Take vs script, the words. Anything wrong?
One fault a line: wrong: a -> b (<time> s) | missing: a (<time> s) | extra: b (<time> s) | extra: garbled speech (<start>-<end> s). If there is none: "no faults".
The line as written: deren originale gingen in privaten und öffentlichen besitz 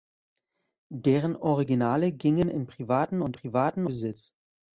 wrong: öffentlichen -> privaten (3.3 s)